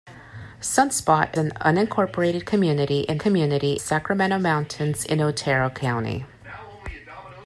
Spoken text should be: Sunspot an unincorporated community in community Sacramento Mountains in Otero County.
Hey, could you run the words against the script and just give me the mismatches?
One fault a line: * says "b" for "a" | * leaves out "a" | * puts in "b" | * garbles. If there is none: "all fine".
all fine